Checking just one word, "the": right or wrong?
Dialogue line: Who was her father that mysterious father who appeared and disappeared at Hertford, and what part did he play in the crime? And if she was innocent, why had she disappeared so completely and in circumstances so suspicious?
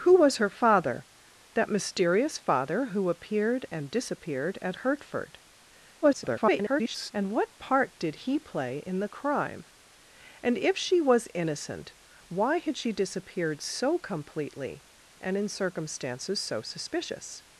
right